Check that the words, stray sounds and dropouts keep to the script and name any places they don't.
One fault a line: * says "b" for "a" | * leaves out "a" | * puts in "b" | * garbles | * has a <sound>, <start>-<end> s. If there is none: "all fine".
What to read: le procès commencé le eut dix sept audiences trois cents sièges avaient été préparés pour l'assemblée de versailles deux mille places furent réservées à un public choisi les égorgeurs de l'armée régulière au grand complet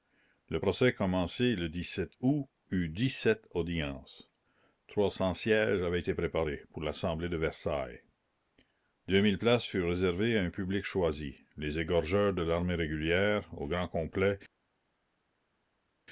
* puts in "août"